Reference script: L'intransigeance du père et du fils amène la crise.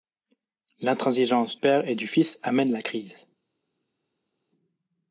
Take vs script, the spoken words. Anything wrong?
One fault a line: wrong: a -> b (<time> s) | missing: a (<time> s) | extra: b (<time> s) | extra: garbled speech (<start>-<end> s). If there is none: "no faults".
missing: du (1.6 s)